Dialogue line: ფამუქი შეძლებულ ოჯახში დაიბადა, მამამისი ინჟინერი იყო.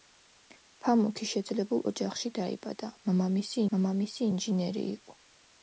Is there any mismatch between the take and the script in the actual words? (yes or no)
yes